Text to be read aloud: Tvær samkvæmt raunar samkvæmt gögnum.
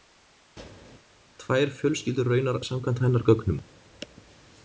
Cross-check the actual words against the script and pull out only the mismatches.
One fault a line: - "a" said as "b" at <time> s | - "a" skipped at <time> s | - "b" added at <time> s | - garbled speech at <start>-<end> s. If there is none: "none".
- "samkvæmt" said as "fjölskyldur" at 1.8 s
- "hennar" added at 3.1 s